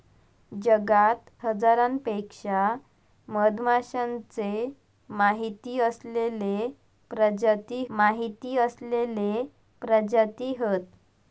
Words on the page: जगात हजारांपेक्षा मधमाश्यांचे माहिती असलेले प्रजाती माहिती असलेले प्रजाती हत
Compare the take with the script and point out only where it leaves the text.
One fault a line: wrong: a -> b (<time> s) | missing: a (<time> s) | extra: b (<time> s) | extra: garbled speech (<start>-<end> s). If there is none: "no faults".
no faults